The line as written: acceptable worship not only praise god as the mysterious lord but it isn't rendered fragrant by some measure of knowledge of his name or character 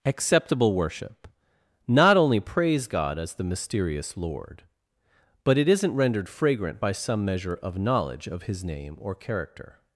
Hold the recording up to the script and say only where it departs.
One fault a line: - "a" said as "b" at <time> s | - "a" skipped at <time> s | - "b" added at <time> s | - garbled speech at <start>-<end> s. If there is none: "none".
none